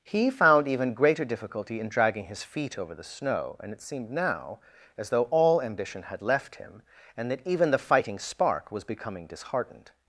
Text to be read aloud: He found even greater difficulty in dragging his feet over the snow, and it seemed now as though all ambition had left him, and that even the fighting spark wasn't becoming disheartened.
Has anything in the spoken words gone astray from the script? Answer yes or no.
yes